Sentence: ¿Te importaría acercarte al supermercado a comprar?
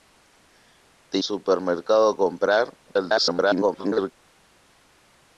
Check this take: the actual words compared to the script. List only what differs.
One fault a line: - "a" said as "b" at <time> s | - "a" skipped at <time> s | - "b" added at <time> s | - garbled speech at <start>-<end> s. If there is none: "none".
- "importaría acercarte al" skipped at 1.2 s
- garbled speech at 2.9-4.1 s